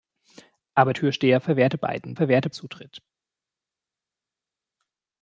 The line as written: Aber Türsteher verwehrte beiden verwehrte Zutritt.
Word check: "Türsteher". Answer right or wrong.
right